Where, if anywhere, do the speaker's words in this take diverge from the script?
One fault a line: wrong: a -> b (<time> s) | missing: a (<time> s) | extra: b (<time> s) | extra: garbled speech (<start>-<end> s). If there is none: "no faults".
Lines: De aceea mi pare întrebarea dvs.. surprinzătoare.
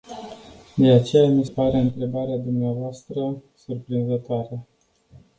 no faults